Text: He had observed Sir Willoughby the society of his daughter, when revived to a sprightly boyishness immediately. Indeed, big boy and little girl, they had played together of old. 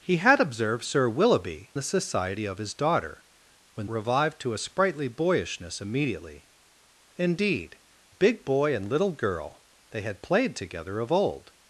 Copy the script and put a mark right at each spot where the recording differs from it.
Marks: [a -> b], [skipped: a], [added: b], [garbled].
He had observed Sir Willoughby the society of his daughter, when revived to a sprightly boyishness immediately. Indeed, big boy and little girl, they had played together of old.